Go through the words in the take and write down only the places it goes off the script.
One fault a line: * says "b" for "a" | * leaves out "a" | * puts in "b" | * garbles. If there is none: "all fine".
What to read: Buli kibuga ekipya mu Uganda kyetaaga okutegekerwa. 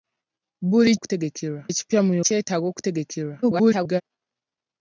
* says "okutegekerwa" for "kibuga"
* leaves out "Uganda"
* garbles